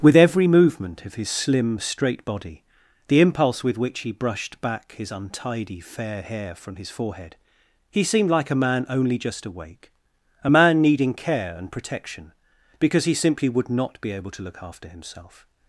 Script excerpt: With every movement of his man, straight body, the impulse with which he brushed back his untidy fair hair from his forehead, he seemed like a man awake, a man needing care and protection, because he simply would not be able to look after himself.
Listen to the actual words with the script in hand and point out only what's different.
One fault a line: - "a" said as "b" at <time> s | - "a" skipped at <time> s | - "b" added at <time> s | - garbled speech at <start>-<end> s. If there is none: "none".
- "man" said as "slim" at 1.3 s
- "only just" added at 8.9 s